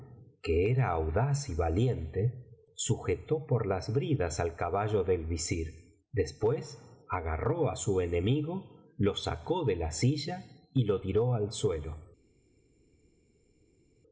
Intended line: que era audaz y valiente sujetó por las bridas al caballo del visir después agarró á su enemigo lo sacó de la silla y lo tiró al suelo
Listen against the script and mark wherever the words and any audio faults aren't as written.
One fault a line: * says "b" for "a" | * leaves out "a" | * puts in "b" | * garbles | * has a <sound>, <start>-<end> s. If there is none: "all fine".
all fine